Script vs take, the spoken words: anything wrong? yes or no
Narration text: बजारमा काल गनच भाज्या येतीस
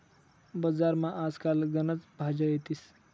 yes